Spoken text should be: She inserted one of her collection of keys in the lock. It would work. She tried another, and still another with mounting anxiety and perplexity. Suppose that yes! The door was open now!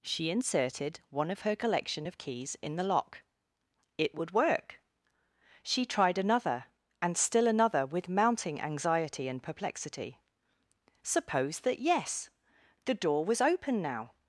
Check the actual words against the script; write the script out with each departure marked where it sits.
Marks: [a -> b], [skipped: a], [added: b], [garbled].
She inserted one of her collection of keys in the lock. It would work. She tried another, and still another with mounting anxiety and perplexity. Suppose that yes! The door was open now!